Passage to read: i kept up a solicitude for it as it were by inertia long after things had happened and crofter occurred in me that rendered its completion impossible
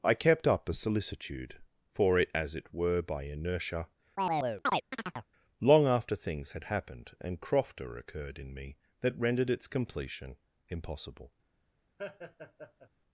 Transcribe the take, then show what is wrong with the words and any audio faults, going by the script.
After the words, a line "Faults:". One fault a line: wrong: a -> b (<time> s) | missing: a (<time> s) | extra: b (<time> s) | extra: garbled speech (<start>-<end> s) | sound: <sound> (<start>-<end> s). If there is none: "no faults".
i kept up a solicitude for it as it were by inertia long after things had happened and crofter occurred in me that rendered its completion impossible
Faults:
sound: chirp (4.2-5.3 s)
sound: laugh (12.0-12.9 s)